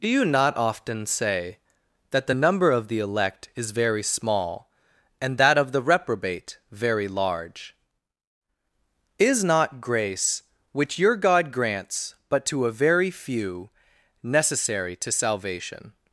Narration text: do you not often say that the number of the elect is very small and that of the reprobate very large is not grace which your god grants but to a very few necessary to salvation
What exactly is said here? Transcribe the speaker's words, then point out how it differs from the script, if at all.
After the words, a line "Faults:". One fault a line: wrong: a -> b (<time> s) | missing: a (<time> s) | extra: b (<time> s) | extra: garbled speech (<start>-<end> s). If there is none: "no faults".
do you not often say that the number of the elect is very small and that of the reprobate very large is not grace which your god grants but to a very few necessary to salvation
Faults:
no faults